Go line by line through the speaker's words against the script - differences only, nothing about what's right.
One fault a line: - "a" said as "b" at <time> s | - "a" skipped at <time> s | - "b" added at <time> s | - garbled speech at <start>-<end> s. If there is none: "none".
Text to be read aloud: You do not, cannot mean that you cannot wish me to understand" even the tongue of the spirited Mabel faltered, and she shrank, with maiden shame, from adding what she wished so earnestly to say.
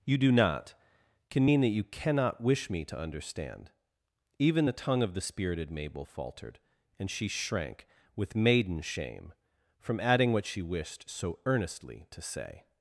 - "cannot" said as "can" at 1.3 s